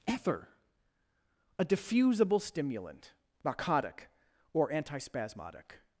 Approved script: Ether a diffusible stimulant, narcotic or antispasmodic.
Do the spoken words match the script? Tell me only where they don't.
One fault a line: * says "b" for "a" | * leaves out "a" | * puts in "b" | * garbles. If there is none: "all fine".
all fine